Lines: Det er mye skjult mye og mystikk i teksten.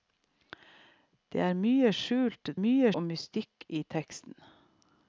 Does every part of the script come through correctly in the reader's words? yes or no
yes